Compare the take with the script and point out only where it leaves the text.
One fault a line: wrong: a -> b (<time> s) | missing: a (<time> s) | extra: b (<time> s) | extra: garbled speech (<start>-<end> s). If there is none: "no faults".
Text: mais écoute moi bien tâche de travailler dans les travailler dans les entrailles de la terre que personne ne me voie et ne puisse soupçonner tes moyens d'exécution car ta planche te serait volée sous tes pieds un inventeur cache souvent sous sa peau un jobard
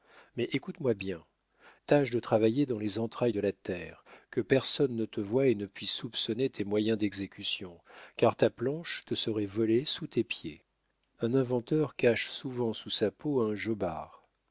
missing: travailler dans les (3.0 s)
wrong: me -> te (5.0 s)